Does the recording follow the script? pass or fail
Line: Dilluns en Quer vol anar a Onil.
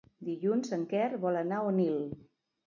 pass